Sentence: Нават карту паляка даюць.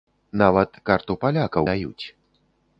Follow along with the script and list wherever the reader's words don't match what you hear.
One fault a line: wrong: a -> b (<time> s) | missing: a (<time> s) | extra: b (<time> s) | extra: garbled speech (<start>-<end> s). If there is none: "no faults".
no faults